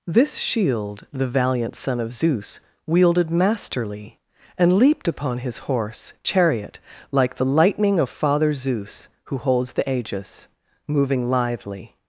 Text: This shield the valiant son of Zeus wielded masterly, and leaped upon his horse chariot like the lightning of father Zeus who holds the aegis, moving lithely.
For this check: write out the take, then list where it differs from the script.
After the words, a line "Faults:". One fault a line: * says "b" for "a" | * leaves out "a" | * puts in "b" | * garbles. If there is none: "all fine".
This shield the valiant son of Zeus wielded masterly, and leaped upon his horse chariot like the lightning of father Zeus who holds the aegis, moving lithely.
Faults:
all fine